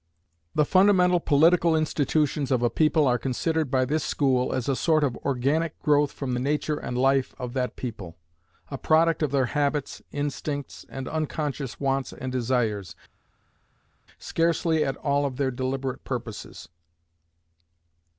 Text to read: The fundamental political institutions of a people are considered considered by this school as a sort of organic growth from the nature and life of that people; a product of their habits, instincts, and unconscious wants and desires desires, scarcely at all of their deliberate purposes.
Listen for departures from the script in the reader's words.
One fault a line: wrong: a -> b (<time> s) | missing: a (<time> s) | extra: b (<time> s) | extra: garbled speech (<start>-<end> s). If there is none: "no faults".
missing: considered (3.7 s)
missing: desires (13.0 s)